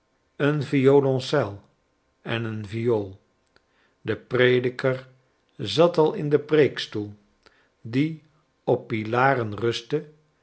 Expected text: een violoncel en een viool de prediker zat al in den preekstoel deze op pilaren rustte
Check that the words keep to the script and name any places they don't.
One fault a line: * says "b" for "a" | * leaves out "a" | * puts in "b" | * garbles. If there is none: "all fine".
* says "die" for "deze"